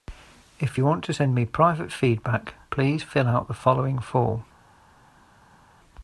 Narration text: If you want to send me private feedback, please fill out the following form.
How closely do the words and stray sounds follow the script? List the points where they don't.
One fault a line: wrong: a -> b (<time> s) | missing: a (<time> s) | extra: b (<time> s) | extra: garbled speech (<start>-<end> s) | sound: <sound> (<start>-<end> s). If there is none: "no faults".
no faults